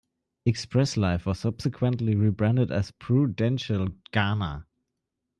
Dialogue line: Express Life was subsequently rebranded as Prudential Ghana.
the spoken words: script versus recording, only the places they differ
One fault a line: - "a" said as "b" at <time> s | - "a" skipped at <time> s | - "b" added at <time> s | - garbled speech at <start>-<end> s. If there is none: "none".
none